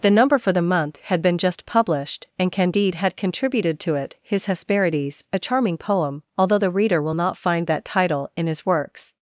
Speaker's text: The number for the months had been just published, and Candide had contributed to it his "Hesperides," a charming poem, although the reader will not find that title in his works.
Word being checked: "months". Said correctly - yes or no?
no